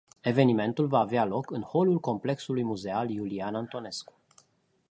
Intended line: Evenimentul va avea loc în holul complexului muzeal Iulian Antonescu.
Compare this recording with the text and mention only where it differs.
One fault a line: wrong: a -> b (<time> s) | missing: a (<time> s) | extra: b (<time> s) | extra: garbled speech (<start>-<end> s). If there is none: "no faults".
no faults